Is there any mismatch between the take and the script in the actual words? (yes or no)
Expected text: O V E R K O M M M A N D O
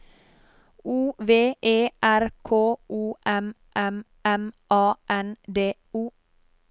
no